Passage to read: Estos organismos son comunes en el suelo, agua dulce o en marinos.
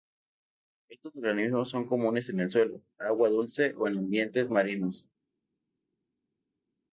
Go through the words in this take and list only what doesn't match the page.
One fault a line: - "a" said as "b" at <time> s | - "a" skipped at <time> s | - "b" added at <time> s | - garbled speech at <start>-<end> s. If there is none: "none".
- "ambientes" added at 4.0 s